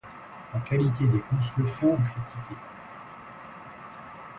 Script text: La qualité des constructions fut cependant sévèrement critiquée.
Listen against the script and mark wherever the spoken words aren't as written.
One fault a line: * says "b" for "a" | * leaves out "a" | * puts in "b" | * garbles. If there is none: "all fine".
* leaves out "fut cependant sévèrement"